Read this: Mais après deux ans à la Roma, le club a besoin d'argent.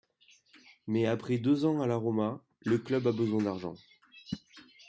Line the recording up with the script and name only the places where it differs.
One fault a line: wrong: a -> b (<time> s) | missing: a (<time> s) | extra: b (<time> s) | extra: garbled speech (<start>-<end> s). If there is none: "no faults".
no faults